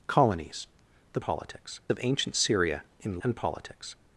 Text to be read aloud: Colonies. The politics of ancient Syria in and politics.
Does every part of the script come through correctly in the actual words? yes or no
yes